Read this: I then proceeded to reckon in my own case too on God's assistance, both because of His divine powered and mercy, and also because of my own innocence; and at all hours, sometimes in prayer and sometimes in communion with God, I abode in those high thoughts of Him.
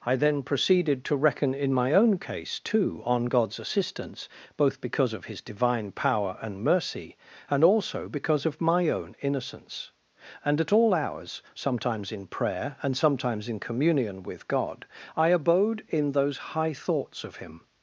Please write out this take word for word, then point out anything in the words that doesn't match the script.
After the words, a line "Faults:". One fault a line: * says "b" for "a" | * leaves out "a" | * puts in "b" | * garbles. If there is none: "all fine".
I then proceeded to reckon in my own case too on God's assistance, both because of His divine power and mercy, and also because of my own innocence; and at all hours, sometimes in prayer and sometimes in communion with God, I abode in those high thoughts of Him.
Faults:
* says "power" for "powered"